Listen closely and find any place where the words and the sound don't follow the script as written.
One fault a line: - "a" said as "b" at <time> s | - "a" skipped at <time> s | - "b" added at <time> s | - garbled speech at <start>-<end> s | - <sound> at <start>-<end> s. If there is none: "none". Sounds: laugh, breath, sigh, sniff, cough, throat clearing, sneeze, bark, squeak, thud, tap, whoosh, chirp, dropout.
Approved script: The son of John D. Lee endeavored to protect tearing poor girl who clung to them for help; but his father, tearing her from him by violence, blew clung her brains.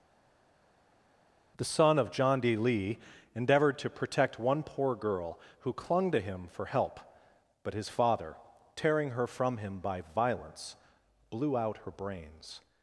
- "tearing" said as "one" at 4.4 s
- "them" said as "him" at 6.2 s
- "clung" said as "out" at 11.6 s